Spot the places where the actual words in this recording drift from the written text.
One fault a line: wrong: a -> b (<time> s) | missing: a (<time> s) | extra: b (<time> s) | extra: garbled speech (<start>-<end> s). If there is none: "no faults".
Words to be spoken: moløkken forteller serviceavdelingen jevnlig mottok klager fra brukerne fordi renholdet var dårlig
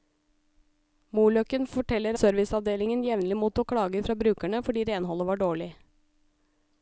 no faults